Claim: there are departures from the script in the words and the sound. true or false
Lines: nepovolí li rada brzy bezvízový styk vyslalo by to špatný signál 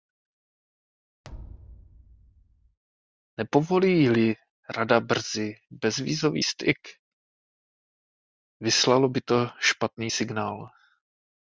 true